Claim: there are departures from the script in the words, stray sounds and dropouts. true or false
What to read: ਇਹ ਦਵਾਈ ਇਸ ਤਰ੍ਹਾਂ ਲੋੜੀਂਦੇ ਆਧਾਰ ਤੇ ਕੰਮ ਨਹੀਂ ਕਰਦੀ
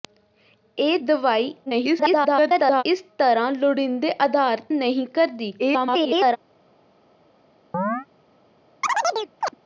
true